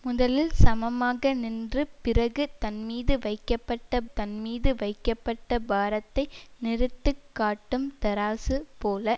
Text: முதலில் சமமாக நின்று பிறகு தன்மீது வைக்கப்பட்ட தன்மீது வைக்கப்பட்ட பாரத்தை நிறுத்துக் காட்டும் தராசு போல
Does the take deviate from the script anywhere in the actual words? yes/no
no